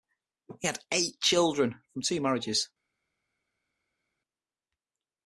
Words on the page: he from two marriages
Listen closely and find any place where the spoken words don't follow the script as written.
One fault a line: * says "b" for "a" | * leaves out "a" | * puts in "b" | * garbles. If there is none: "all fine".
* puts in "had eight children"